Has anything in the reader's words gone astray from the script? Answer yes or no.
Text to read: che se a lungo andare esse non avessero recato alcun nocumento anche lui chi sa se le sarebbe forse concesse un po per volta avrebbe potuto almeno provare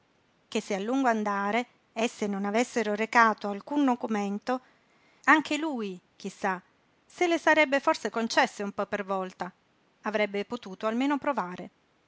no